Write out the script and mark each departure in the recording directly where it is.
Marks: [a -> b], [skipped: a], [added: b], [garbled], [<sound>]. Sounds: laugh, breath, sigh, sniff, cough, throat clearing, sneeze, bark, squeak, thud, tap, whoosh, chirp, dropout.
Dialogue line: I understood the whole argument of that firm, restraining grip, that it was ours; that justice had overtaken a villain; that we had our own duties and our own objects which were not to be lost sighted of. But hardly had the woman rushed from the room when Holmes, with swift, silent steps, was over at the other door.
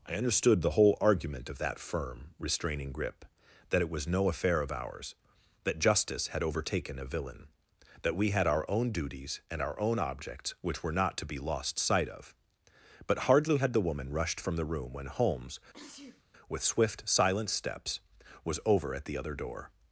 I understood the whole argument of that firm, restraining grip, that it was [added: no affair of] ours; that justice had overtaken a villain; that we had our own duties and our own objects which were not to be lost [sighted -> sight] of. But hardly had the woman rushed from the room when Holmes, [sneeze] with swift, silent steps, was over at the other door.